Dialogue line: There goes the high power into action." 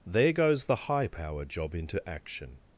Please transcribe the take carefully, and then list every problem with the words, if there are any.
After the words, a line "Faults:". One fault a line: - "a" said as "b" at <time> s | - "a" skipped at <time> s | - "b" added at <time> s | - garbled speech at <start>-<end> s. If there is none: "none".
There goes the high power job into action."
Faults:
- "job" added at 1.4 s